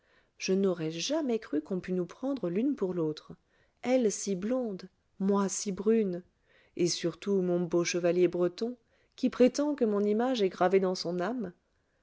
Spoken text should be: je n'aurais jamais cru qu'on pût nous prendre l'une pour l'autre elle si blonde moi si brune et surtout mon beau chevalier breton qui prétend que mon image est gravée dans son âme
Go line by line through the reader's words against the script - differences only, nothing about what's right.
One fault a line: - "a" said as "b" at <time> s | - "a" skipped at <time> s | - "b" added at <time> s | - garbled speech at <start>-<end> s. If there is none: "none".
none